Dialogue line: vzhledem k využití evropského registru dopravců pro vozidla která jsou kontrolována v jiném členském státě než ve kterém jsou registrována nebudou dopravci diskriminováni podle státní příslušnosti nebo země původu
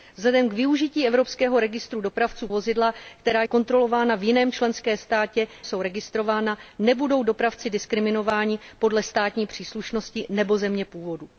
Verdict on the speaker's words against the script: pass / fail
fail